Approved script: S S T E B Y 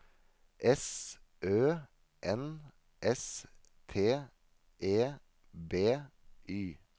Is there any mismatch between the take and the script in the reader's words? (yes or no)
yes